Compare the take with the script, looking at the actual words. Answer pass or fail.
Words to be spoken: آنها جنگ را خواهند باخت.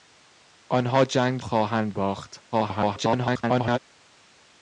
fail